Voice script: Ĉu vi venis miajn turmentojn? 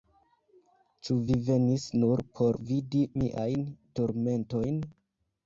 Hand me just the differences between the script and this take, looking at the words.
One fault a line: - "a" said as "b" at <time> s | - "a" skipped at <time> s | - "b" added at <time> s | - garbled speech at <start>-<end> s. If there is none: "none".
- "nur por vidi" added at 2.0 s